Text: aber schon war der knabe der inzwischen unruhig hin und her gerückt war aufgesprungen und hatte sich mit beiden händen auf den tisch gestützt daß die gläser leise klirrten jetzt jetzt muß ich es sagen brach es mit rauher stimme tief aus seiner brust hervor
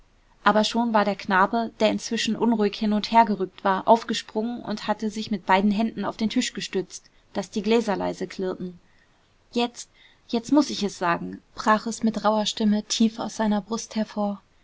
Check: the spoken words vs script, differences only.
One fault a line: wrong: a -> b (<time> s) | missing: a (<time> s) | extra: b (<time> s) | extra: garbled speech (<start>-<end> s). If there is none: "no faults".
no faults